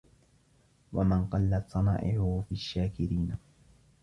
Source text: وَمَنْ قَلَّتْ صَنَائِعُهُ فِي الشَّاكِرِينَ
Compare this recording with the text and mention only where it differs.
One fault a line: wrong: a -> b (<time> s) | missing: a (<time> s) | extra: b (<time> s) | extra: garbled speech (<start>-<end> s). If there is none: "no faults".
no faults